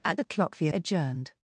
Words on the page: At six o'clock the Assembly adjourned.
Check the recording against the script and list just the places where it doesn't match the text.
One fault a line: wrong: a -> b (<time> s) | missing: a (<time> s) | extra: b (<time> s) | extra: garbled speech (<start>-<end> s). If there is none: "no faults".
missing: six (0.2 s)
missing: Assembly (0.7 s)